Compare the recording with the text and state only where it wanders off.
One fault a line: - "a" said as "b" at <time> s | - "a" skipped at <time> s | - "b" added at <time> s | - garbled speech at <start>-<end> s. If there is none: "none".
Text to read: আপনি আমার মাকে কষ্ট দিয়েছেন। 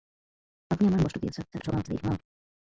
- "মাকে" skipped at 1.0 s
- garbled speech at 1.5-2.2 s